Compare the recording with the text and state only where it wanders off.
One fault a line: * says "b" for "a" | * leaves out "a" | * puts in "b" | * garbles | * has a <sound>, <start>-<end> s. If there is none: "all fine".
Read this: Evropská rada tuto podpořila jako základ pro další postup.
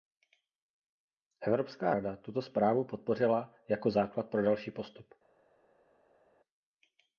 * puts in "zprávu"